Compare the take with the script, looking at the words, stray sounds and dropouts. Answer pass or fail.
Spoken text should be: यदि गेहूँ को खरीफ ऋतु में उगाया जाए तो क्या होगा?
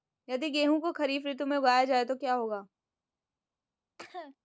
fail